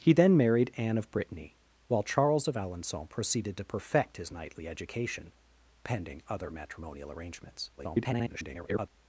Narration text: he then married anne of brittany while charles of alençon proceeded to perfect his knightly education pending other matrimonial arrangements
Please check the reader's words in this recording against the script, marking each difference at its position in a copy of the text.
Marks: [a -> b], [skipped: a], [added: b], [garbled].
he then married anne of brittany while charles of alençon proceeded to perfect his knightly education pending other matrimonial arrangements [garbled]